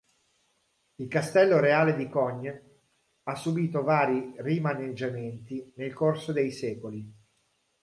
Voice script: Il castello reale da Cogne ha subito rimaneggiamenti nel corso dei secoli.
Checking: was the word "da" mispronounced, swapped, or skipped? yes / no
yes